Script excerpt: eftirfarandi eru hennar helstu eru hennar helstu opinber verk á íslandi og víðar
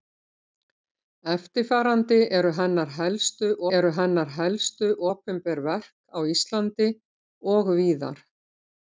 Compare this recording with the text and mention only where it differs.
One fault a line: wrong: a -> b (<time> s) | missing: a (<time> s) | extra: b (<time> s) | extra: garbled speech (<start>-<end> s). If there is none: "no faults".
no faults